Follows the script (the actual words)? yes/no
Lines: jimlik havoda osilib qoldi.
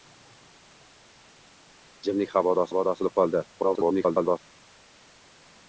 no